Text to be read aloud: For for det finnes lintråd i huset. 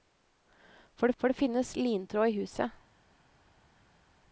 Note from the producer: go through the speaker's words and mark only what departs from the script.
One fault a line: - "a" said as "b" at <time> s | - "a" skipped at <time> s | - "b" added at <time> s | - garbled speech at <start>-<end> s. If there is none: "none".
none